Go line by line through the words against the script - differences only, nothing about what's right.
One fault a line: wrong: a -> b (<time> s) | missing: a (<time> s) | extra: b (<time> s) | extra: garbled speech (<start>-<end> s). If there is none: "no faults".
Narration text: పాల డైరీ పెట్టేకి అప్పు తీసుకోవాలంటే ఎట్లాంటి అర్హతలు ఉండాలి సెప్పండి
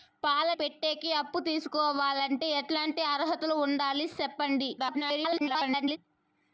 missing: డైరీ (0.5 s)
extra: garbled speech (4.8-6.0 s)